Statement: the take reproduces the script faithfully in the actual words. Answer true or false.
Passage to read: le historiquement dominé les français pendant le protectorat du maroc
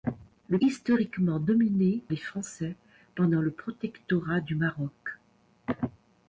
true